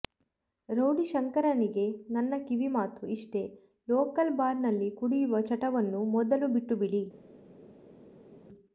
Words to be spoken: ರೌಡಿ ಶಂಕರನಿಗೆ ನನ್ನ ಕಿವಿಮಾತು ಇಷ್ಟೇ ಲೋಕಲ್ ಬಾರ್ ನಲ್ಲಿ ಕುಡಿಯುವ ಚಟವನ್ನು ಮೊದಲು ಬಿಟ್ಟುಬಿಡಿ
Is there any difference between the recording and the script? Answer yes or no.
no